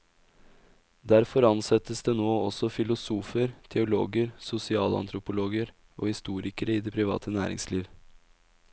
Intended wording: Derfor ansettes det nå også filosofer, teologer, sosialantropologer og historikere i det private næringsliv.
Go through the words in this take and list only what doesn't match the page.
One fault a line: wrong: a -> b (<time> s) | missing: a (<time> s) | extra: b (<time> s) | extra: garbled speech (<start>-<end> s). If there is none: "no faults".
no faults